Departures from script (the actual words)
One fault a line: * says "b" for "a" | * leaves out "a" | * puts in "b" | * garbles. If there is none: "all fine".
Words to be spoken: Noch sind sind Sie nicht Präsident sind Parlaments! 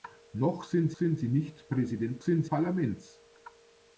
all fine